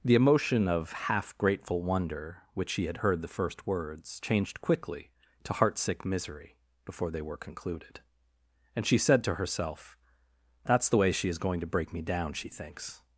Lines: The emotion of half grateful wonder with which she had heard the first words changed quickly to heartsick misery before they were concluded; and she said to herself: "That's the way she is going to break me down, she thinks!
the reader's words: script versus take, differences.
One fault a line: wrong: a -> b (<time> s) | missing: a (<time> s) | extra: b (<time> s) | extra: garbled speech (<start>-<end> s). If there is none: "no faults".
missing: with (2.4 s)